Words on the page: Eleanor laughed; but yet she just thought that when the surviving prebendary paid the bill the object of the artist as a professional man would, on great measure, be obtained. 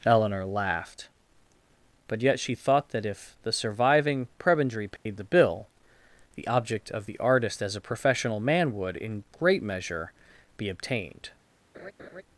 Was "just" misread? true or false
true